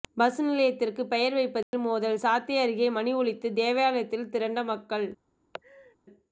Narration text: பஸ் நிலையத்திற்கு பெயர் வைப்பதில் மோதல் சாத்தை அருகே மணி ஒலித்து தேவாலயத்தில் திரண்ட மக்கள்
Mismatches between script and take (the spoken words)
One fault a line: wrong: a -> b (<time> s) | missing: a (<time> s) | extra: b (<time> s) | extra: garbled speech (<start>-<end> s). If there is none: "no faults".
no faults